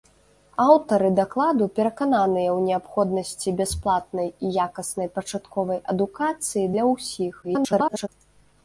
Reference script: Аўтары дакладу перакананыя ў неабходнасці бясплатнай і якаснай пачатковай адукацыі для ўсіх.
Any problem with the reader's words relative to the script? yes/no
yes